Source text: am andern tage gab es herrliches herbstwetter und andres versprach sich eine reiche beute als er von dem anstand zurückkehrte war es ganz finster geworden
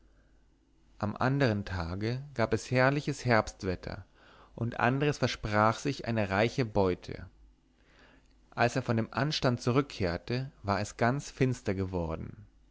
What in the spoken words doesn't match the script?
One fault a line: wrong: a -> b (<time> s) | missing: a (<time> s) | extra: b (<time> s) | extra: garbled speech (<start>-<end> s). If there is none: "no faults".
no faults